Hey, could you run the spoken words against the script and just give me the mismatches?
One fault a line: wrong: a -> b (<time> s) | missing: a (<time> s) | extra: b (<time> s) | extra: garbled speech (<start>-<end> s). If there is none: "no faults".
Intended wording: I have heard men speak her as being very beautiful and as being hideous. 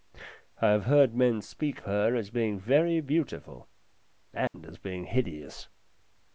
no faults